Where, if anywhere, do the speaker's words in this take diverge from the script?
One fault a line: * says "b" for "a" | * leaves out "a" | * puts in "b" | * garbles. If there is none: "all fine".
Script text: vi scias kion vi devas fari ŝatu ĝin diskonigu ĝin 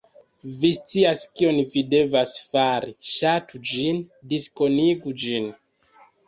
all fine